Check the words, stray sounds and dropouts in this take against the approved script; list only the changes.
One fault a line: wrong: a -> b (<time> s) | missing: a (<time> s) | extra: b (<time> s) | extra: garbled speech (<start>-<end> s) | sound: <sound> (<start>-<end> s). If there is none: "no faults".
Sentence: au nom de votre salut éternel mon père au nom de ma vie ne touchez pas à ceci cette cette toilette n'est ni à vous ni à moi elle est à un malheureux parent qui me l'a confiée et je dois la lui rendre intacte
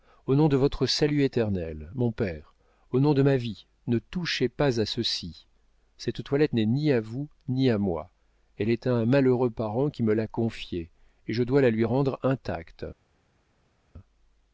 missing: cette (6.2 s)